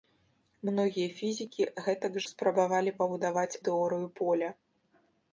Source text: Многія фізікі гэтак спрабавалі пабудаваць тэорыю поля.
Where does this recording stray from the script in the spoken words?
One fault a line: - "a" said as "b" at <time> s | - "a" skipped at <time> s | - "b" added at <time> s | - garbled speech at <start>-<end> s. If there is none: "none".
none